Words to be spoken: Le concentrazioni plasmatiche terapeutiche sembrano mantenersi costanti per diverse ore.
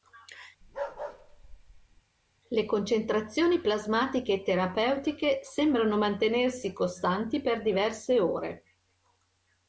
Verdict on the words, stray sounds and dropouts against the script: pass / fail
fail